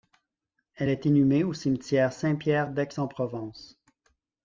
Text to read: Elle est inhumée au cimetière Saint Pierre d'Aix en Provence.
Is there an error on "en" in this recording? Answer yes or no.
no